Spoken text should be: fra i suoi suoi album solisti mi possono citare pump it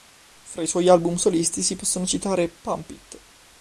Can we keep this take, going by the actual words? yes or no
no